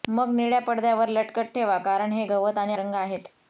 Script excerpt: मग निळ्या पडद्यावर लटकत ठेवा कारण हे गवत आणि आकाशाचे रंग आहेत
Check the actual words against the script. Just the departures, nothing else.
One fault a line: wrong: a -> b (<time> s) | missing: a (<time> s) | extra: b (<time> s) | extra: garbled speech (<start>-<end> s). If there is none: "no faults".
missing: आकाशाचे (2.7 s)